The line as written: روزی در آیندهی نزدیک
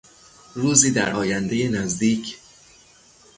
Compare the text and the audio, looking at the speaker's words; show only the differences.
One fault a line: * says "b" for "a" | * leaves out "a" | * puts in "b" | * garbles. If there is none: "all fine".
all fine